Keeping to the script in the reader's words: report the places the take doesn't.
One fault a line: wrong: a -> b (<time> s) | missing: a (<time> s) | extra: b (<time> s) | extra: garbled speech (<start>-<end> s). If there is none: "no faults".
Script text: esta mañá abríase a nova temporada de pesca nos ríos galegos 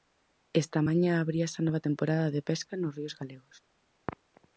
no faults